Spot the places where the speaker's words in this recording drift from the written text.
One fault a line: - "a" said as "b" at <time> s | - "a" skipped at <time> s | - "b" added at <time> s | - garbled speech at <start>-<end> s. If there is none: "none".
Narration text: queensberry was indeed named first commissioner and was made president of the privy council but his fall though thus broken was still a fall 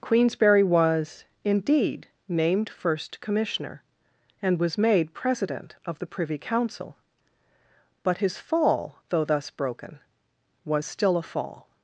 none